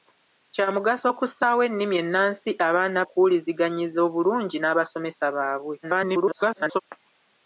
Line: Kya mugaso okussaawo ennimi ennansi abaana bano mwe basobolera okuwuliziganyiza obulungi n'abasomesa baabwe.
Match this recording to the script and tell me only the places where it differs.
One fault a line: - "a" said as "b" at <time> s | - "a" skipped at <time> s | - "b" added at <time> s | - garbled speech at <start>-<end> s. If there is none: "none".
- "bano mwe basobolera" skipped at 3.0 s
- garbled speech at 5.8-6.8 s